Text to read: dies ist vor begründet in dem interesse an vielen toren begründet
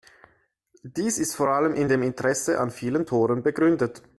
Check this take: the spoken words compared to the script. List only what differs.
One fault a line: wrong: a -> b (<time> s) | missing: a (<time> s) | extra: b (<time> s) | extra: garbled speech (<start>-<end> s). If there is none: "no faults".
wrong: begründet -> allem (1.5 s)